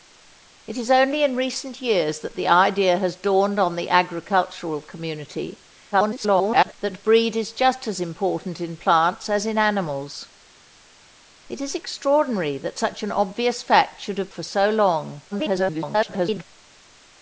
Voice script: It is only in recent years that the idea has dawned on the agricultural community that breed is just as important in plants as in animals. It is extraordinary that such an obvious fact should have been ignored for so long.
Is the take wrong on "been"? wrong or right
wrong